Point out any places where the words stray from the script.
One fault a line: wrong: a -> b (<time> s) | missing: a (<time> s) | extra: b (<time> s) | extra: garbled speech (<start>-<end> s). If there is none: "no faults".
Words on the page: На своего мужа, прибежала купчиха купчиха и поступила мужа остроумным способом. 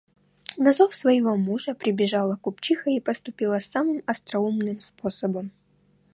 extra: зов (0.7 s)
missing: купчиха (2.9 s)
wrong: мужа -> самым (3.6 s)